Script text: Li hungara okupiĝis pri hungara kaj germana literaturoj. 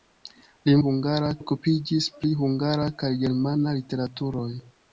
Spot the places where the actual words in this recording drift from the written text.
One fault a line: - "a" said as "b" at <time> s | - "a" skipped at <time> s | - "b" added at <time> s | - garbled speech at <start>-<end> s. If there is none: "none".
none